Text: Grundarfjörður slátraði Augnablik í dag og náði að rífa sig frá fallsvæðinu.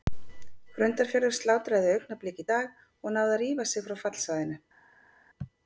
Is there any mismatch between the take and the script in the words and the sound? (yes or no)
no